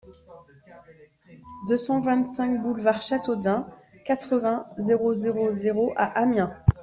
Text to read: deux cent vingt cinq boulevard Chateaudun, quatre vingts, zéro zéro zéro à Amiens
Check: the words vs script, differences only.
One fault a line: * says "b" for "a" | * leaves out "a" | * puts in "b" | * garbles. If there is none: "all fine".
all fine